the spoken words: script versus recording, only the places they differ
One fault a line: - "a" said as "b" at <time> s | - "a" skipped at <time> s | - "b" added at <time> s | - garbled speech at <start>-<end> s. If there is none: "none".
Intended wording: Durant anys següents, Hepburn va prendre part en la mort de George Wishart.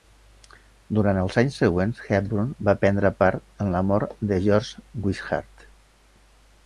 - "els" added at 1.2 s